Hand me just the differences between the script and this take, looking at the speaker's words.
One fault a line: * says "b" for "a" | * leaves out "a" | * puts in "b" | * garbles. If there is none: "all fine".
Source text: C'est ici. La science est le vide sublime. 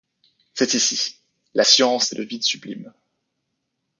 all fine